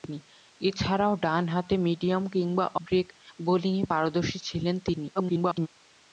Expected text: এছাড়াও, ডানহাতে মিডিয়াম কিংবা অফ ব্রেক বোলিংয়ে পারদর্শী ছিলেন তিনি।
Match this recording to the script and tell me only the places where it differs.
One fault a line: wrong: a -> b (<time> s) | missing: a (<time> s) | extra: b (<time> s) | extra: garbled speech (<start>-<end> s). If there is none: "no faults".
missing: অফ (2.6 s)
extra: garbled speech (5.1-5.7 s)